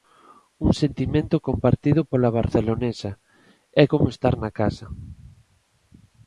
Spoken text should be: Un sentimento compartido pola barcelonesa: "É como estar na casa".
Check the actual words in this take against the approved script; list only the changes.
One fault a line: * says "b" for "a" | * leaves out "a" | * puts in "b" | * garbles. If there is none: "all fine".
all fine